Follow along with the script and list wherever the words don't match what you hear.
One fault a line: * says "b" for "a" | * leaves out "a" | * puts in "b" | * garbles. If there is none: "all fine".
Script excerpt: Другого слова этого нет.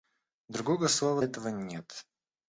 all fine